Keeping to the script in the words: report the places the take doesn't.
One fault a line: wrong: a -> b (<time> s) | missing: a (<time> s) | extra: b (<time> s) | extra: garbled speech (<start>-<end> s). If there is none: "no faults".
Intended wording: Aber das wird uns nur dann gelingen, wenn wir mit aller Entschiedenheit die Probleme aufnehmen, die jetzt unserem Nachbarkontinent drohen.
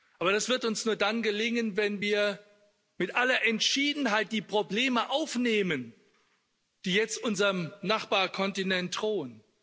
no faults